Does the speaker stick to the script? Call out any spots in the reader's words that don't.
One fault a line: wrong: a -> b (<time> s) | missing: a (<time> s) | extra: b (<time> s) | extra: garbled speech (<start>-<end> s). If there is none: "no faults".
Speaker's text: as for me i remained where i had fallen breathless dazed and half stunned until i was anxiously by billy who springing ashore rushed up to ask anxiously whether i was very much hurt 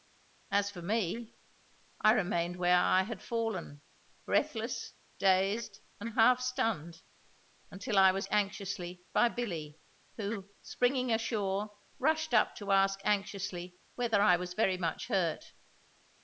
no faults